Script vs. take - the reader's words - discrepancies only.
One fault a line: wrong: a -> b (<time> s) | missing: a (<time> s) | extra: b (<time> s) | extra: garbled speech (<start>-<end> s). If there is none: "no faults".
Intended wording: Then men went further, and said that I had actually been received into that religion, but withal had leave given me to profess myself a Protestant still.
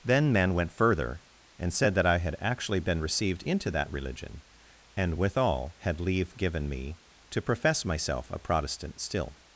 wrong: but -> and (4.9 s)